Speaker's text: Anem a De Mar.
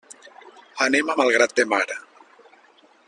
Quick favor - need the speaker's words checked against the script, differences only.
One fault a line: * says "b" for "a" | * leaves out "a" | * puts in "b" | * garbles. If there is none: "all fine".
* puts in "Malgrat"